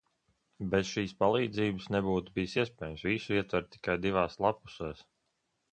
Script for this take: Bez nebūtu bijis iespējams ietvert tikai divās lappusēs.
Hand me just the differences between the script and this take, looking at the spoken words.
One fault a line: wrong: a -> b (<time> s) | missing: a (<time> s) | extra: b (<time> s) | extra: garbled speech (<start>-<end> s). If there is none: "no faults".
extra: šīs palīdzības (0.9 s)
extra: visu (3.1 s)